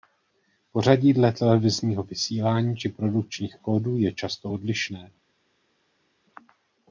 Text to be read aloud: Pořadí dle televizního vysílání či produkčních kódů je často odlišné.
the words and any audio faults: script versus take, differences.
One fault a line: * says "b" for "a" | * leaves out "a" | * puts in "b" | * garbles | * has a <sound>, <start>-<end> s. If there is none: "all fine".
all fine